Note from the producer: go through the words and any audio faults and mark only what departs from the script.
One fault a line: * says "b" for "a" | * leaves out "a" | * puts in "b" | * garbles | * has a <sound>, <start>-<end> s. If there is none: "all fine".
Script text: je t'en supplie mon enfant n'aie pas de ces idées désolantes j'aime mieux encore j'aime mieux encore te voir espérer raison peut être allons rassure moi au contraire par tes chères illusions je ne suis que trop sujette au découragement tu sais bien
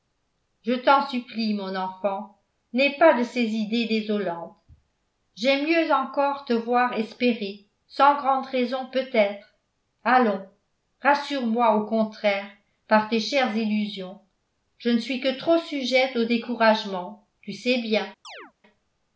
* leaves out "j'aime mieux encore"
* puts in "sans grande"
* has a chirp, 18.2-18.5 s